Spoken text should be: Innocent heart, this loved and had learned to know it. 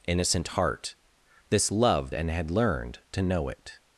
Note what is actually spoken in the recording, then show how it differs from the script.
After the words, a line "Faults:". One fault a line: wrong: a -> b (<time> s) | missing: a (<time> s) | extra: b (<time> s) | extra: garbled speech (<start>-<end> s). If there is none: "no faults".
Innocent heart, this loved and had learned to know it.
Faults:
no faults